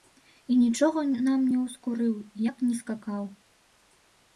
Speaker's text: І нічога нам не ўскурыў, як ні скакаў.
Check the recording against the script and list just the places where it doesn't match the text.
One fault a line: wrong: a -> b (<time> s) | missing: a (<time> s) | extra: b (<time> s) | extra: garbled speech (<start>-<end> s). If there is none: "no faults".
no faults